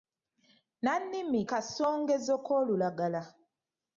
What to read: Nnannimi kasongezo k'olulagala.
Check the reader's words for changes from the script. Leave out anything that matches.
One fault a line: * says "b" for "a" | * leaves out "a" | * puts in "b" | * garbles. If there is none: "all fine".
all fine